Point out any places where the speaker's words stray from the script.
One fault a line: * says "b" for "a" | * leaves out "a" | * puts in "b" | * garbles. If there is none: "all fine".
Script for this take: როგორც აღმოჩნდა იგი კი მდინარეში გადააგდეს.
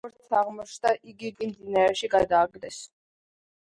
all fine